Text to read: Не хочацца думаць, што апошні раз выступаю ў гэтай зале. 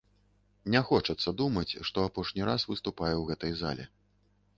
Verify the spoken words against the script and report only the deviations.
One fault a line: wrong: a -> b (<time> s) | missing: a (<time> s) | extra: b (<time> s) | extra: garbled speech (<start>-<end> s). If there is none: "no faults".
no faults